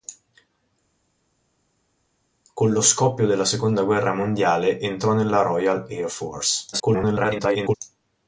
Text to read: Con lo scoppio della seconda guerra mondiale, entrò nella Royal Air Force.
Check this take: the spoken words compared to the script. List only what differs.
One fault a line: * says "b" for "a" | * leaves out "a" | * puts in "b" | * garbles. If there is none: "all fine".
* garbles